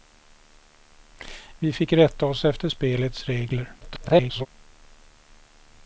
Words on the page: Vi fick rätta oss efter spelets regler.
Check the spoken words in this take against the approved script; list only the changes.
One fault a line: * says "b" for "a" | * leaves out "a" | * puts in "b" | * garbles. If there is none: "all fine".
* garbles